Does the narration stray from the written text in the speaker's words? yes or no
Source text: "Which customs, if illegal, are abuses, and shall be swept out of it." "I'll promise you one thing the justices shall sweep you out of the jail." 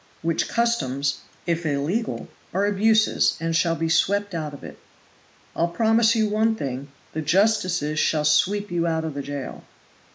no